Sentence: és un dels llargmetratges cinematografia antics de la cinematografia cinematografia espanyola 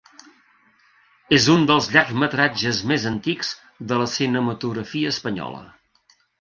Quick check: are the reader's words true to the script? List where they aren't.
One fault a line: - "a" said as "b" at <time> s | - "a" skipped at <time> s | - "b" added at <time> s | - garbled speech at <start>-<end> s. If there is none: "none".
- "cinematografia" said as "més" at 2.9 s
- "cinematografia" skipped at 5.2 s